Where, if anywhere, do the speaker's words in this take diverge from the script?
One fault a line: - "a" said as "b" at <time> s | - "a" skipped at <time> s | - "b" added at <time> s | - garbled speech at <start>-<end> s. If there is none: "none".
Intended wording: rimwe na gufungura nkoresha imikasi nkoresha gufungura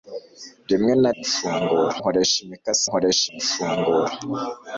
none